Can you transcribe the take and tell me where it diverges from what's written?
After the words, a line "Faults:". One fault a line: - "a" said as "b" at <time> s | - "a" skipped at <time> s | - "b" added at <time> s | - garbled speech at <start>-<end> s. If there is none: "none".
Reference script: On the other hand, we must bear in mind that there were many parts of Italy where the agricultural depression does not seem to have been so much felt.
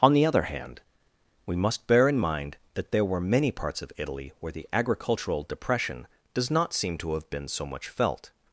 On the other hand, we must bear in mind that there were many parts of Italy where the agricultural depression does not seem to have been so much felt.
Faults:
none